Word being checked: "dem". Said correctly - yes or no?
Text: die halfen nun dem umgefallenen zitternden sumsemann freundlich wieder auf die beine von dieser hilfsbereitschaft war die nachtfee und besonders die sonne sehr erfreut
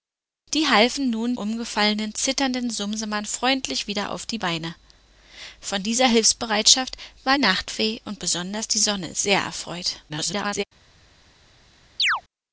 no